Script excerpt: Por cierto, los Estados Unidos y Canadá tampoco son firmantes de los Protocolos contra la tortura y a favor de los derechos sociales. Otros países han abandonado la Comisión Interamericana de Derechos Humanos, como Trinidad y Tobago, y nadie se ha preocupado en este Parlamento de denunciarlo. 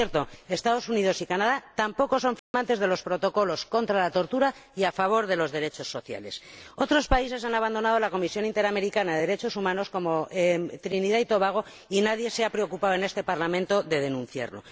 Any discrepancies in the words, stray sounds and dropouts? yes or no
yes